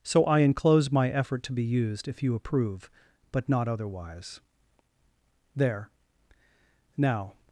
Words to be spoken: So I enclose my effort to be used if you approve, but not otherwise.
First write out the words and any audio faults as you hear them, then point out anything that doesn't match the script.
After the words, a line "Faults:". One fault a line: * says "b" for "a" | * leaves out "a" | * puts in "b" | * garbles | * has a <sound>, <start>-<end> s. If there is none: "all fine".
So I enclose my effort to be used if you approve, but not otherwise. There! Now
Faults:
* puts in "There Now"